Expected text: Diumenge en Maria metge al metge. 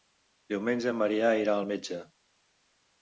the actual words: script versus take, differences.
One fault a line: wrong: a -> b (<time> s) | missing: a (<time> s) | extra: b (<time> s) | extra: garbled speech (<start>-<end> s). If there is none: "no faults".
wrong: metge -> irà (1.4 s)